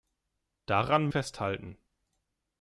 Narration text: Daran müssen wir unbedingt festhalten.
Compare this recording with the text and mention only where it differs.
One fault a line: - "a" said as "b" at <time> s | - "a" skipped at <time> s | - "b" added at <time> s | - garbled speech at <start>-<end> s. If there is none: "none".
- "müssen wir unbedingt" skipped at 1.1 s